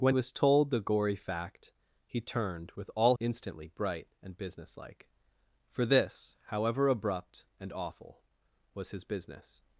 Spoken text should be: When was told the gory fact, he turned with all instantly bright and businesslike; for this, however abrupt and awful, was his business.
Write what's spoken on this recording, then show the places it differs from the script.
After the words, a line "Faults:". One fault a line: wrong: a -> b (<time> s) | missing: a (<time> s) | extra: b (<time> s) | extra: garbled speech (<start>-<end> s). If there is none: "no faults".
When was told the gory fact, he turned with all instantly bright and businesslike; for this, however abrupt and awful, was his business.
Faults:
no faults